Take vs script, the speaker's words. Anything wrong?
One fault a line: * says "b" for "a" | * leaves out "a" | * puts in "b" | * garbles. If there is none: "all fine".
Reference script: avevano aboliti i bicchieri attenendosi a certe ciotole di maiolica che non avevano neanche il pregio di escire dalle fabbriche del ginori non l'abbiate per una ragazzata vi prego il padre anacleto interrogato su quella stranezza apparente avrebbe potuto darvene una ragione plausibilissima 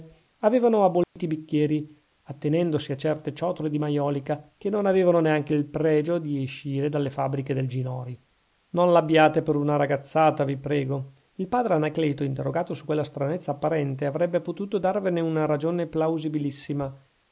all fine